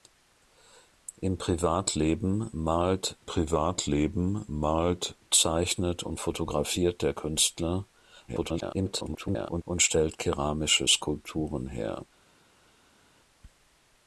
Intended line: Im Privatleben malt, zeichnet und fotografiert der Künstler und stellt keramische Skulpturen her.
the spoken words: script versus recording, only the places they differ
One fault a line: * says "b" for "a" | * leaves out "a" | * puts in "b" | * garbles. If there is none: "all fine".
* puts in "Privatleben malt"
* garbles